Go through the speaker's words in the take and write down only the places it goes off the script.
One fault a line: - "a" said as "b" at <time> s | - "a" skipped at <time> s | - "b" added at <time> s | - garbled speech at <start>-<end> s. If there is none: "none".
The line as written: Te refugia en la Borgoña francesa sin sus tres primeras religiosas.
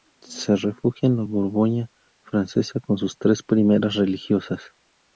- "Te" said as "Se" at 0.2 s
- "sin" said as "con" at 2.8 s